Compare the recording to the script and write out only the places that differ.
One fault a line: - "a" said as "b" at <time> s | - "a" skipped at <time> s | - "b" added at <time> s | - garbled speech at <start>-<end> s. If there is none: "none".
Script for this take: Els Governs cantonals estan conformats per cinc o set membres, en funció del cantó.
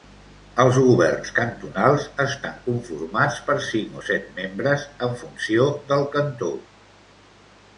none